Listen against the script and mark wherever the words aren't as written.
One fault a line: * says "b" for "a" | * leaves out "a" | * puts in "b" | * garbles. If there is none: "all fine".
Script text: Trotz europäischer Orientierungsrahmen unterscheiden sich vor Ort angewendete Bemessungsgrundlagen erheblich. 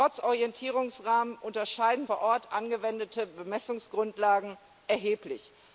* leaves out "europäischer"
* leaves out "sich"